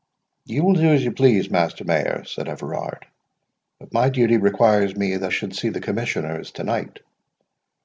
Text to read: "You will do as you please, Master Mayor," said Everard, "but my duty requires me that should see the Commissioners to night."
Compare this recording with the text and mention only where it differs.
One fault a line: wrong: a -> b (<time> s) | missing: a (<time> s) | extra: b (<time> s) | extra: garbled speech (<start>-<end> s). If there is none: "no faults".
no faults